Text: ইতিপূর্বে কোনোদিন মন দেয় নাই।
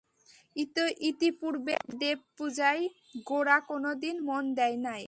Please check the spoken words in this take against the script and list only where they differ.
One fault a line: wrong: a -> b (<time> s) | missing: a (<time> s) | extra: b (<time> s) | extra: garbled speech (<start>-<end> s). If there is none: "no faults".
extra: দেবপূজায় গোরা (2.0 s)